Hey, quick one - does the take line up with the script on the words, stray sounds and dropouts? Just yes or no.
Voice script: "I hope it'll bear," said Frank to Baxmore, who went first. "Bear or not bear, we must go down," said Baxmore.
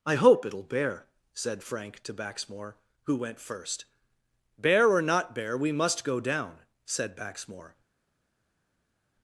yes